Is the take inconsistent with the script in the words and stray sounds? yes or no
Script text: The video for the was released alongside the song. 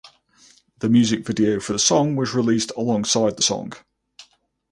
yes